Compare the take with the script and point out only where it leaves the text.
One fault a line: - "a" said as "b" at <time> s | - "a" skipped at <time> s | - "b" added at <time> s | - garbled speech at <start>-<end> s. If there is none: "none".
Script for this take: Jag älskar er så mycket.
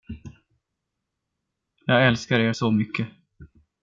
none